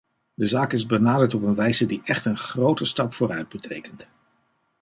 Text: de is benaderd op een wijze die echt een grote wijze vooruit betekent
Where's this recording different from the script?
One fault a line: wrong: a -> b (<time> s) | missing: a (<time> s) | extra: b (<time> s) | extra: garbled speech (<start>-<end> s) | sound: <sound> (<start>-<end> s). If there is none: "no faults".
extra: zaak (0.5 s)
wrong: wijze -> stap (2.9 s)